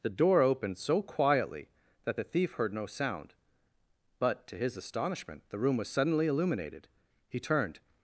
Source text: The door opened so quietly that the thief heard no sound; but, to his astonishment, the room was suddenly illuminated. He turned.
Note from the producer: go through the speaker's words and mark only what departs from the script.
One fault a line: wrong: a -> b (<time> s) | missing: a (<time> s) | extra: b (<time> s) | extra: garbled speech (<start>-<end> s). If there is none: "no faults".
no faults